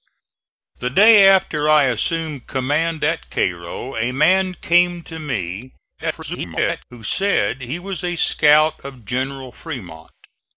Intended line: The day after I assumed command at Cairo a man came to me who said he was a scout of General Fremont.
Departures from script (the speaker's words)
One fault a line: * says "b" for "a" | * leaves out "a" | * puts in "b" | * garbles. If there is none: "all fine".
* garbles